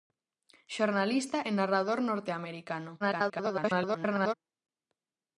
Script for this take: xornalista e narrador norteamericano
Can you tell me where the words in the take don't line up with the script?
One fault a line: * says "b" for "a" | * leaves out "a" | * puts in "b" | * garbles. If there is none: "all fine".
* garbles